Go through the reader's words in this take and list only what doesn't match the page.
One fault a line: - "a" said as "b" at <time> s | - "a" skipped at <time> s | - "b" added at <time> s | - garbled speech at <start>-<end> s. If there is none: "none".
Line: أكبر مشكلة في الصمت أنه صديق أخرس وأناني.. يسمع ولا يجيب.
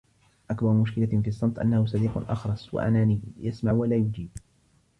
none